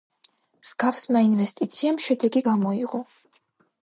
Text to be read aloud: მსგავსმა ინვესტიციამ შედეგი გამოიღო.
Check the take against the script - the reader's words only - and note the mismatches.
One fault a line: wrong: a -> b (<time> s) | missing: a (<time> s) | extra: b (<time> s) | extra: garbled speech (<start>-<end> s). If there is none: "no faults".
no faults